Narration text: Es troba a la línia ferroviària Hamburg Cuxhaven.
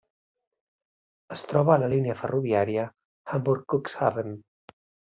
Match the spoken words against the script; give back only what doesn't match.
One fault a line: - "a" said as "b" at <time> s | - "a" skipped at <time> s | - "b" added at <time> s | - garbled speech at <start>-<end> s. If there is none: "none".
none